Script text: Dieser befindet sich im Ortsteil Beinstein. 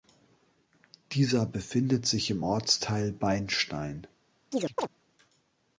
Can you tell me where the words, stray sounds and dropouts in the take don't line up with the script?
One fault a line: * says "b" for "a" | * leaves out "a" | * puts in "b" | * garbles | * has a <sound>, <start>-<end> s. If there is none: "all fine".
* has a chirp, 4.5-4.9 s